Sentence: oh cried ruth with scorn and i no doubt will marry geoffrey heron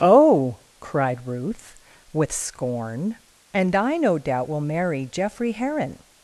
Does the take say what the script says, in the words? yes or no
yes